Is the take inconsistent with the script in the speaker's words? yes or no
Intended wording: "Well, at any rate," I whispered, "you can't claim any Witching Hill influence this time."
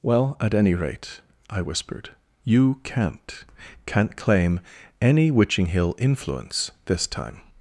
yes